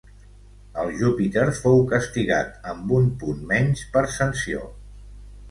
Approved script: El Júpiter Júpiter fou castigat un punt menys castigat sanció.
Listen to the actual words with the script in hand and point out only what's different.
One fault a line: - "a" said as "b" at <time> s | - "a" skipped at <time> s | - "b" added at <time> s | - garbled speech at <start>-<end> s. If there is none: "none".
- "Júpiter" skipped at 1.4 s
- "amb" added at 2.7 s
- "castigat" said as "per" at 3.9 s